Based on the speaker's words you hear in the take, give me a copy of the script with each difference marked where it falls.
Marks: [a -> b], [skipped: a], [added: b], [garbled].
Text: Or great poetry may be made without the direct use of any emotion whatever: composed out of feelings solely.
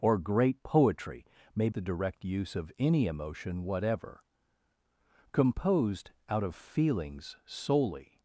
Or great poetry may [skipped: be made without] the direct use of any emotion whatever: composed out of feelings solely.